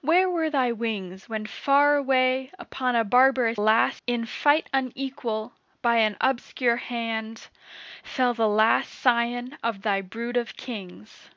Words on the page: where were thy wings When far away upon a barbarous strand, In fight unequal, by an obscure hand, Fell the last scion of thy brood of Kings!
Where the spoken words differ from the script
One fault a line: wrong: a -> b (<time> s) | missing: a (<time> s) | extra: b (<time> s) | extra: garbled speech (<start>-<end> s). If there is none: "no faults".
wrong: strand -> last (3.6 s)